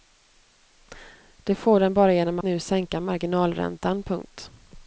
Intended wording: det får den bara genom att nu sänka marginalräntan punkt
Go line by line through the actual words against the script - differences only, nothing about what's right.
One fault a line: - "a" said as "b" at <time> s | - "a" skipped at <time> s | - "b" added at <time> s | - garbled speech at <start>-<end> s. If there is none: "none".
- "att" skipped at 2.4 s